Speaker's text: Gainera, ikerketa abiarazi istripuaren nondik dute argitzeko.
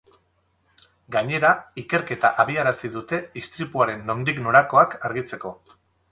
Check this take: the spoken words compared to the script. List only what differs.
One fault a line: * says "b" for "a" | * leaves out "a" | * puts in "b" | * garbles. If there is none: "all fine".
* puts in "dute"
* says "norakoak" for "dute"